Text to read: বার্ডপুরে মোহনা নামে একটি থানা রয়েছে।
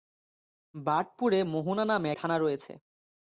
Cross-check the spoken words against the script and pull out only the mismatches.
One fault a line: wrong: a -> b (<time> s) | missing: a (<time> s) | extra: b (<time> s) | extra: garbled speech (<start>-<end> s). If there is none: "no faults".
missing: একটি (2.1 s)